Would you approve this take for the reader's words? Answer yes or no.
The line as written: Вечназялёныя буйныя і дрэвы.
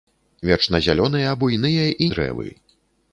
yes